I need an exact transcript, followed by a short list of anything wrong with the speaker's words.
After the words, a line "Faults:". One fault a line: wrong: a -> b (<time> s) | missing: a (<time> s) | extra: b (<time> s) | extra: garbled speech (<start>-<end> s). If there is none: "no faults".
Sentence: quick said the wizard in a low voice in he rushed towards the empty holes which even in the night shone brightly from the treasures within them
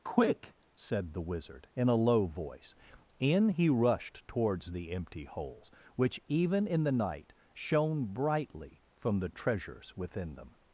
quick said the wizard in a low voice in he rushed towards the empty holes which even in the night shone brightly from the treasures within them
Faults:
no faults